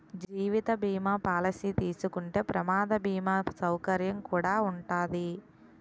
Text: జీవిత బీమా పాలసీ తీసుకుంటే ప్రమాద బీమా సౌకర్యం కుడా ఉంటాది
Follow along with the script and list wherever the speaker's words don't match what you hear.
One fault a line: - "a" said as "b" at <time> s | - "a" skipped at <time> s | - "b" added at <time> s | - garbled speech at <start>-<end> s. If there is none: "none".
none